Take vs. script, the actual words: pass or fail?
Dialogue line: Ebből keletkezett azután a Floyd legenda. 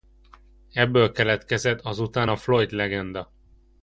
pass